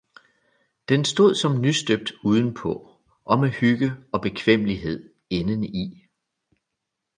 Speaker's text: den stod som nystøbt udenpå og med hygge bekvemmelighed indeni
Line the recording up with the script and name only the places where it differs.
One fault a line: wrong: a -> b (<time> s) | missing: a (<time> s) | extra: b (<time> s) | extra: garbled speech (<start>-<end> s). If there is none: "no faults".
extra: og (4.1 s)